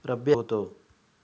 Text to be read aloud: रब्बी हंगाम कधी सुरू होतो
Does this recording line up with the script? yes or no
no